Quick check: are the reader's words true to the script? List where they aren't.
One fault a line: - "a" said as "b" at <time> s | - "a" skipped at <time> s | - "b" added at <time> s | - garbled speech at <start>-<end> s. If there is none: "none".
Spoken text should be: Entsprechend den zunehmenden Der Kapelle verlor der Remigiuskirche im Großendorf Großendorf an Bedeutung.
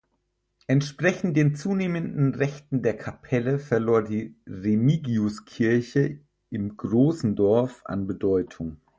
- "Rechten" added at 2.3 s
- "der" said as "die" at 4.0 s
- "Großendorf" skipped at 7.8 s